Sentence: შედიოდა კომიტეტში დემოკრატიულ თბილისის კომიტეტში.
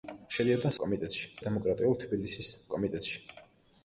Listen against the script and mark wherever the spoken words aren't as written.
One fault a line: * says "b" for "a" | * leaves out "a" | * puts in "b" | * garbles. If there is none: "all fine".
all fine